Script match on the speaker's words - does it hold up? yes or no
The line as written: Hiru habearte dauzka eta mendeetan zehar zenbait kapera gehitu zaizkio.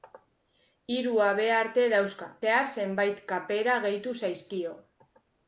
no